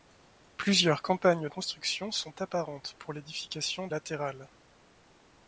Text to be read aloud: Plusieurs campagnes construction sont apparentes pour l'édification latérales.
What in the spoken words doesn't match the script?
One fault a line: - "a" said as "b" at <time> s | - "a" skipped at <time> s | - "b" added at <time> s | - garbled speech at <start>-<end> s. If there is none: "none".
none